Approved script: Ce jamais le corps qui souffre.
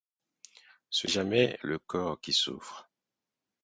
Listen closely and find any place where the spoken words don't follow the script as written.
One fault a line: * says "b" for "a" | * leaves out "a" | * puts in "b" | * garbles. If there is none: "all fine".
all fine